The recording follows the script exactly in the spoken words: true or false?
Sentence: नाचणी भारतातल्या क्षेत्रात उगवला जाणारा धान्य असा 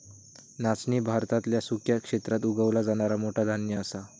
false